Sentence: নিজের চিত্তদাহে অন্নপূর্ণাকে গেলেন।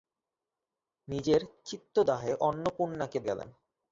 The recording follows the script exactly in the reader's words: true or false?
true